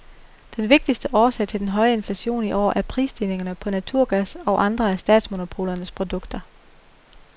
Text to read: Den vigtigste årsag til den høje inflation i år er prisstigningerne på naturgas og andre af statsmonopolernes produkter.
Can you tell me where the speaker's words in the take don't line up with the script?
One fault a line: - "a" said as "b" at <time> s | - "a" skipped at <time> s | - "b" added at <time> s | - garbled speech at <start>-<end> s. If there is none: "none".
none